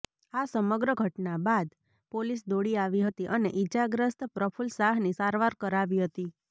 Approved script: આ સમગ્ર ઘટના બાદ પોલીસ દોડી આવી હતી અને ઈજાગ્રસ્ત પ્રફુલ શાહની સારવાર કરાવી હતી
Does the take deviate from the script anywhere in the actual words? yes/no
no